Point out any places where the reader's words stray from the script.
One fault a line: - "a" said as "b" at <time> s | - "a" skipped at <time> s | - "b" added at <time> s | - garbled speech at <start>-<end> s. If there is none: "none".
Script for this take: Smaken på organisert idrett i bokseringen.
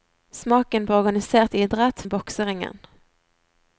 none